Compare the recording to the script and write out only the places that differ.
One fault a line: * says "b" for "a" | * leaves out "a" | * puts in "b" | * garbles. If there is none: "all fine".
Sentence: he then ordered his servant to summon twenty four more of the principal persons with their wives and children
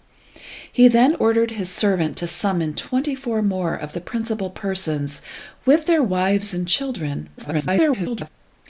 * garbles